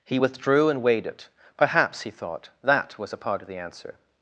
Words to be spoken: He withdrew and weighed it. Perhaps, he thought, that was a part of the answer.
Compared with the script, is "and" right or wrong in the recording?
right